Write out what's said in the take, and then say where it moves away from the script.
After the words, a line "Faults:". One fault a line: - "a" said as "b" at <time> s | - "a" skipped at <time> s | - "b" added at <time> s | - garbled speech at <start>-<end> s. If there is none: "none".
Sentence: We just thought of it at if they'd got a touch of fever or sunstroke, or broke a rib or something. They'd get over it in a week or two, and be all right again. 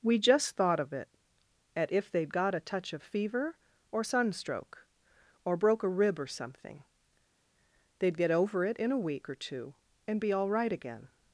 We just thought of it at if they'd got a touch of fever or sunstroke, or broke a rib or something. They'd get over it in a week or two, and be all right again.
Faults:
none